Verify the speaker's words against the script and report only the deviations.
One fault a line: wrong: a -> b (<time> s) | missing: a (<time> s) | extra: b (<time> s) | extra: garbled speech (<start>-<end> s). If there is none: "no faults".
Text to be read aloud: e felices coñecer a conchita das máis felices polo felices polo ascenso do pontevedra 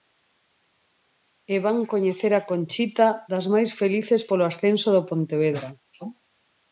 wrong: felices -> van (1.6 s)
missing: felices polo (4.4 s)